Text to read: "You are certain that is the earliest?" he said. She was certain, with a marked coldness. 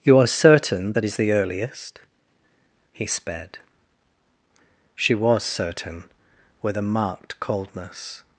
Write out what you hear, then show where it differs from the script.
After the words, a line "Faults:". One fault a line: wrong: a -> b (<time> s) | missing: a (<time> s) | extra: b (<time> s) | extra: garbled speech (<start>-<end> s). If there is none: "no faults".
"You are certain that is the earliest?" he sped. She was certain, with a marked coldness.
Faults:
wrong: said -> sped (3.0 s)